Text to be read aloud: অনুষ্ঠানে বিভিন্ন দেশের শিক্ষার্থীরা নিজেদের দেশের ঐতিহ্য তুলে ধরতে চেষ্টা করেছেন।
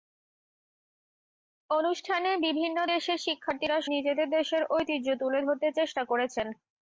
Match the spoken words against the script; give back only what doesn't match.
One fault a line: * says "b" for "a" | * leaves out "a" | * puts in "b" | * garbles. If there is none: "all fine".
all fine